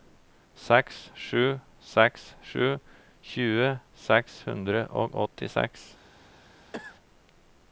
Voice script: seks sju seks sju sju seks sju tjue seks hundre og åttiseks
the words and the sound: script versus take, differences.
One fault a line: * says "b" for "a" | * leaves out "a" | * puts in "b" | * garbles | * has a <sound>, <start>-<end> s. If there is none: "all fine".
* leaves out "sju seks sju"
* has a cough, 6.7-7.0 s